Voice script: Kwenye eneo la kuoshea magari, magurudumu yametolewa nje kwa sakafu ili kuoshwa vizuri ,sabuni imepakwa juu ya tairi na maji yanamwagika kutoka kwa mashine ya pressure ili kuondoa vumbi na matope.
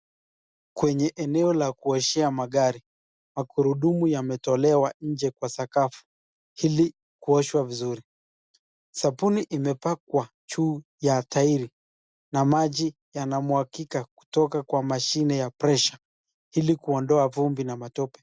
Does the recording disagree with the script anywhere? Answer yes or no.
no